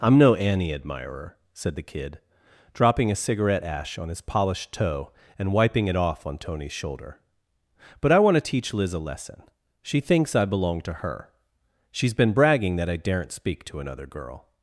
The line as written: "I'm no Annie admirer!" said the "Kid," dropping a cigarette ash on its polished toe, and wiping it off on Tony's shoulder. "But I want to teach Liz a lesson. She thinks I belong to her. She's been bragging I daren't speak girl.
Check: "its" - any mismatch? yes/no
yes